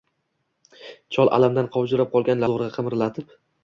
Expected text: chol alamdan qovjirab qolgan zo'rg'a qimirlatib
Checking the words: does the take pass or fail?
pass